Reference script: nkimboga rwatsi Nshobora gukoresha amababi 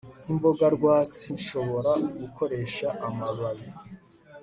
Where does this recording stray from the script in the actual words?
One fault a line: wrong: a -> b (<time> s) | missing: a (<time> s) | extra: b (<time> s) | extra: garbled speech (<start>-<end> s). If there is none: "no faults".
no faults